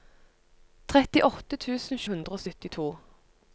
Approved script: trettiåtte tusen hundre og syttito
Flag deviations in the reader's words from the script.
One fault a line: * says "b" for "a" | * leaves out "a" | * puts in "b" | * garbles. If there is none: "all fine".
all fine